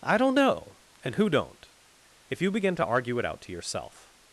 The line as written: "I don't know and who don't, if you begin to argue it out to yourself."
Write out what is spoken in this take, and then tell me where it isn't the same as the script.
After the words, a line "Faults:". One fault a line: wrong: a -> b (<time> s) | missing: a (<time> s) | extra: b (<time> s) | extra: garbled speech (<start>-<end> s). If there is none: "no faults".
"I don't know and who don't, if you begin to argue it out to yourself."
Faults:
no faults